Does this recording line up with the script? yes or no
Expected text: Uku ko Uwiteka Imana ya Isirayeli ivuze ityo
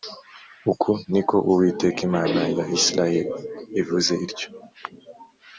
no